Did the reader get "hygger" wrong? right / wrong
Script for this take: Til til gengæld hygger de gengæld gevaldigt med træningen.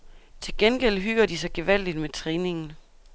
right